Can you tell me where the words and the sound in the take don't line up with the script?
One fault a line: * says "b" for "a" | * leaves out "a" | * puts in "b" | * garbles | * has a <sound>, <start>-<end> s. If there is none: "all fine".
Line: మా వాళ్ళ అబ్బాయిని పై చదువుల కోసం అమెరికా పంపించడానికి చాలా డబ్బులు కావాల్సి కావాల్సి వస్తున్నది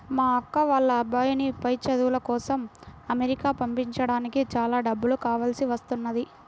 * puts in "అక్క"
* leaves out "కావాల్సి"